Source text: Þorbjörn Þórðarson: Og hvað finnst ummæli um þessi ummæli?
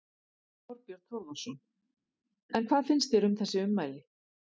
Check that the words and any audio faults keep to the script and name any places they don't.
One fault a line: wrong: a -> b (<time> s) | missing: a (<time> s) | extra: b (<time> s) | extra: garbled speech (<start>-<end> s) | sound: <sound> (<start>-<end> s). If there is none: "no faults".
wrong: Og -> En (2.6 s)
wrong: ummæli -> þér (3.2 s)